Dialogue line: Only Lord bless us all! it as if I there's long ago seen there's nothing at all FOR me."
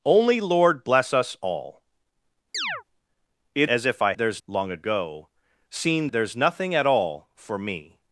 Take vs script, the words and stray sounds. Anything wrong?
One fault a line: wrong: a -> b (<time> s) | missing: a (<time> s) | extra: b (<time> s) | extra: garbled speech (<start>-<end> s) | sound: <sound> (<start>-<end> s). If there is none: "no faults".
sound: chirp (2.5-2.8 s)